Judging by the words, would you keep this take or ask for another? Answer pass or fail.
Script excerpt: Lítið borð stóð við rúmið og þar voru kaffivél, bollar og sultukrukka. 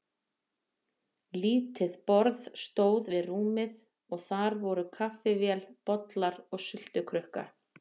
pass